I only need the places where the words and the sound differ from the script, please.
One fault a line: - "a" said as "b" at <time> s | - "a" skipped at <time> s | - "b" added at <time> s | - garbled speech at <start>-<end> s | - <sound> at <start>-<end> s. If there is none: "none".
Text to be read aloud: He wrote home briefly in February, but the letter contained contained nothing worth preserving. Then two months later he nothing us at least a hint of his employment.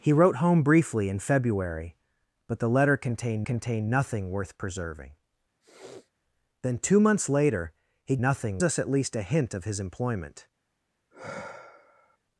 - sniff at 5.6-6.1 s
- sigh at 11.1-12.2 s